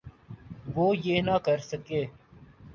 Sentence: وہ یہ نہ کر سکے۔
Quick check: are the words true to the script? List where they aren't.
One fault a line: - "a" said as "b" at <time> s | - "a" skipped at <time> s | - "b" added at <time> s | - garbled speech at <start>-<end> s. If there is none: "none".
none